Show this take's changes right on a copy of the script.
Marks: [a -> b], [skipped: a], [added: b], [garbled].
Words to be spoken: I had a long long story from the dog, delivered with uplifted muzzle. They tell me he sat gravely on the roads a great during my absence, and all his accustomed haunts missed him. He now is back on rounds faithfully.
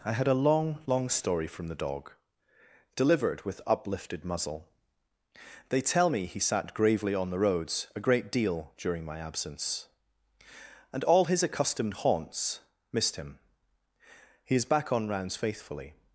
I had a long long story from the dog, delivered with uplifted muzzle. They tell me he sat gravely on the roads a great [added: deal] during my absence, and all his accustomed haunts missed him. He [skipped: now] is back on rounds faithfully.